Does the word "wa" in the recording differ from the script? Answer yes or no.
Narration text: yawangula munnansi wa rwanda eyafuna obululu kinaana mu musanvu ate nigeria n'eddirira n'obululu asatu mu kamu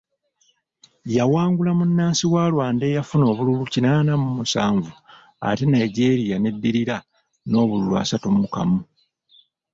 no